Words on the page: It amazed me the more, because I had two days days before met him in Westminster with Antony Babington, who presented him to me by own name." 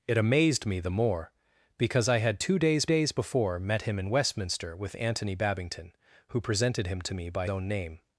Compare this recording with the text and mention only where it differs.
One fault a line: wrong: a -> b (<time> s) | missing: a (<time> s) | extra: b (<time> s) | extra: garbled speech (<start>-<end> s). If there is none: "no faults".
no faults